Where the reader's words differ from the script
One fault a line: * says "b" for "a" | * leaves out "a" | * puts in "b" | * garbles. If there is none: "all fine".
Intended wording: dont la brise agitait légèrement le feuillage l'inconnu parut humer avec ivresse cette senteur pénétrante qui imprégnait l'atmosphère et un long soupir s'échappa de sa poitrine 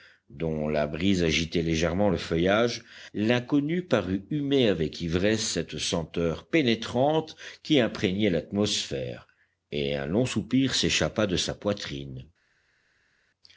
all fine